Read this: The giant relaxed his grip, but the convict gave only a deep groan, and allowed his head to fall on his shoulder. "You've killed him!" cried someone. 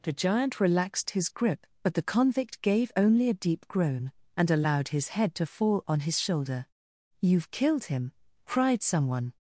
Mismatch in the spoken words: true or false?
false